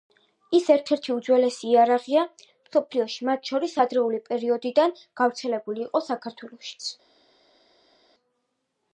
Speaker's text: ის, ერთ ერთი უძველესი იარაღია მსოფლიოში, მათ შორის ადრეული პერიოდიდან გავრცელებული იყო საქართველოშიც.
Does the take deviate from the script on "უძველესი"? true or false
false